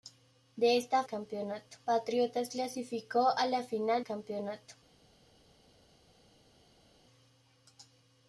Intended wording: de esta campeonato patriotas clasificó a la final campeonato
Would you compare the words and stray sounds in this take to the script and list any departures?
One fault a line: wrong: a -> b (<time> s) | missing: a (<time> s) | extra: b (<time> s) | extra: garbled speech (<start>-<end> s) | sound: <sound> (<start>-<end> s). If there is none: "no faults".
no faults